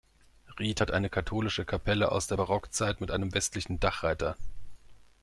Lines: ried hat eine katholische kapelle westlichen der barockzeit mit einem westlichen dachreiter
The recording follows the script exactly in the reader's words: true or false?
false